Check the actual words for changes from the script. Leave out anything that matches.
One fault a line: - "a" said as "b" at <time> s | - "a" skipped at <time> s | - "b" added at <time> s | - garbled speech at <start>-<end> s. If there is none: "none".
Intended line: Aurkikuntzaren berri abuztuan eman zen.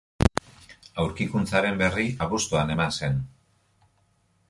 none